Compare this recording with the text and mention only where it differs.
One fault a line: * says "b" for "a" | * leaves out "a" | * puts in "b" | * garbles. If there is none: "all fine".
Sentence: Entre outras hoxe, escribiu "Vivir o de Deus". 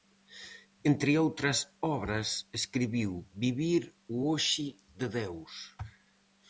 * says "obras" for "hoxe"
* puts in "hoxe"